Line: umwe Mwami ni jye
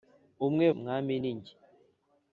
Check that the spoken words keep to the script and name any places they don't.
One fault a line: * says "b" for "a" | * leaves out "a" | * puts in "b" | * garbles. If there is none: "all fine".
all fine